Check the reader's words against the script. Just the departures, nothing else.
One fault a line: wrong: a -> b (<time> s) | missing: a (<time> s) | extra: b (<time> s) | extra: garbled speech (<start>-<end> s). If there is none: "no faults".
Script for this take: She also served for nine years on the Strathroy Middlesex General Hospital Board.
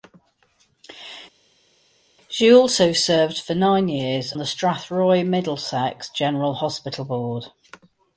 missing: on (4.3 s)